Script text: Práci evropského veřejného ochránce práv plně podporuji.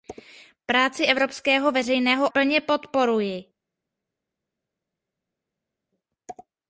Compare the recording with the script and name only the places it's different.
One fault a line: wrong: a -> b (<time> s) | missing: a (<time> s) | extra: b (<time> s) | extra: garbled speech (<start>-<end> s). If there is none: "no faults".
missing: ochránce práv (2.3 s)